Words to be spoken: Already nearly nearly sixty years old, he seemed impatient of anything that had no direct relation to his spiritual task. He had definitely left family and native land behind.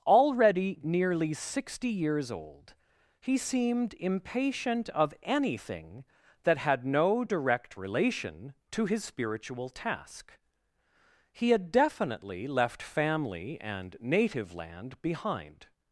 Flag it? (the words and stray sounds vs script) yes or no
yes